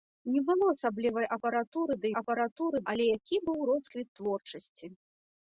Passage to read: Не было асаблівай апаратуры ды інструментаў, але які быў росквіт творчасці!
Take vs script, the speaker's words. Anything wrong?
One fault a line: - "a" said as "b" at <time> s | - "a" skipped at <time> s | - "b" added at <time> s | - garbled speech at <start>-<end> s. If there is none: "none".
- "інструментаў" said as "апаратуры" at 2.2 s